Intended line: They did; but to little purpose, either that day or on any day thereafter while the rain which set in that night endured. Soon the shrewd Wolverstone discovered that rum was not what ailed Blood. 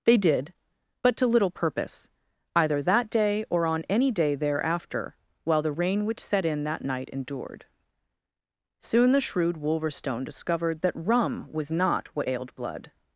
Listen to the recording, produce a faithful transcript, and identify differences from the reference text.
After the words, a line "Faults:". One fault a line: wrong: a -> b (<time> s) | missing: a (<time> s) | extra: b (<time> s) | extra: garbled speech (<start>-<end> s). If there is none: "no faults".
They did; but to little purpose, either that day or on any day thereafter while the rain which set in that night endured. Soon the shrewd Wolverstone discovered that rum was not what ailed Blood.
Faults:
no faults